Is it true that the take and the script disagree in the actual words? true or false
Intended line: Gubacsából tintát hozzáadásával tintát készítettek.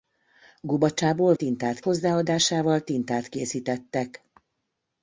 false